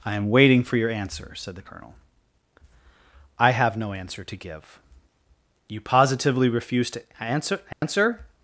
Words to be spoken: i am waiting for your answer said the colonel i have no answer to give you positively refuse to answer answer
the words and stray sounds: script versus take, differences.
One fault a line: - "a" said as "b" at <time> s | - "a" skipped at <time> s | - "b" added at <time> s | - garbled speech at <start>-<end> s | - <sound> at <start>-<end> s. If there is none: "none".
- dropout at 7.7-7.8 s